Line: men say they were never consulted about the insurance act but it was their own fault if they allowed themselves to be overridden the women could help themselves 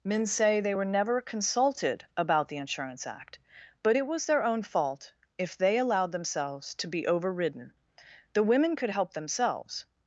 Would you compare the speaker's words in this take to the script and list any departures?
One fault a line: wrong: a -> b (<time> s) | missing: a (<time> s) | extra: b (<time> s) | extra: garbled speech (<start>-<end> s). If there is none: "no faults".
no faults